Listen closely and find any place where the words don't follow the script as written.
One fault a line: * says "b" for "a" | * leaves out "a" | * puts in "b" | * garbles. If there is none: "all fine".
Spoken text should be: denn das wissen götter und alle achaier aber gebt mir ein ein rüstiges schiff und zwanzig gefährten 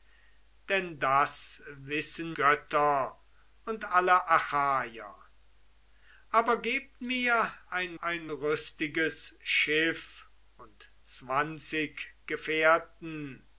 all fine